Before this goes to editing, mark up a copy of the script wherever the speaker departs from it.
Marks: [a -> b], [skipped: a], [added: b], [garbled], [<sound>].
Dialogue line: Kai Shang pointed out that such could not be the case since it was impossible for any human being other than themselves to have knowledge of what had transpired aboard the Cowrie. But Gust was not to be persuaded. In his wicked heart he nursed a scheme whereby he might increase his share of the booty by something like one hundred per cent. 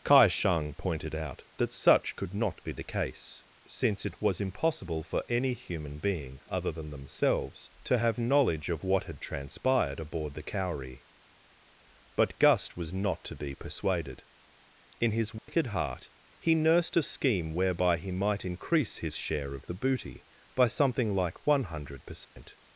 Kai Shang pointed out that such could not be the case since it was impossible for any human being other than themselves to have knowledge of what had transpired aboard the Cowrie. But Gust was not to be persuaded. In his wicked [dropout] heart he nursed a scheme whereby he might increase his share of the booty by something like one hundred per cent. [dropout]